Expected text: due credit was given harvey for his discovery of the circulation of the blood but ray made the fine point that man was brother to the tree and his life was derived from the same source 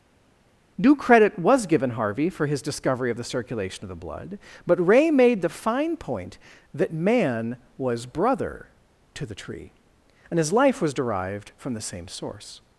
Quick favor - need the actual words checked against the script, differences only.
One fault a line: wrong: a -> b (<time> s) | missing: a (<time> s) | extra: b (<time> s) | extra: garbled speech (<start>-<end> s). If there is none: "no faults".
no faults